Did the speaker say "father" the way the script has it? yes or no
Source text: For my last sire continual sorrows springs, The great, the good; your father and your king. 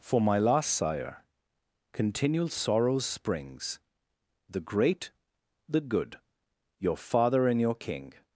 yes